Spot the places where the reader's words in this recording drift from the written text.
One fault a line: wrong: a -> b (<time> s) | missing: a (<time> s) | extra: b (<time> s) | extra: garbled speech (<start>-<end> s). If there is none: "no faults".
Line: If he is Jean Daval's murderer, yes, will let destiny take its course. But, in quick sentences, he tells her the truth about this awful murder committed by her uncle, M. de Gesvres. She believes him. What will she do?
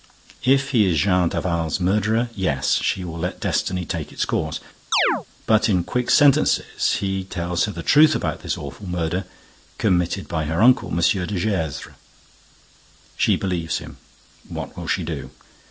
extra: she (2.8 s)